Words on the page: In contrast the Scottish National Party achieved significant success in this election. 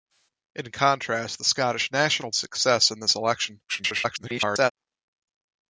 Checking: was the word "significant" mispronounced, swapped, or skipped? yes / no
yes